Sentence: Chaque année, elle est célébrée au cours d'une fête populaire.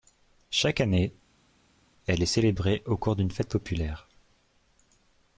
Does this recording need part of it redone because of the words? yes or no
no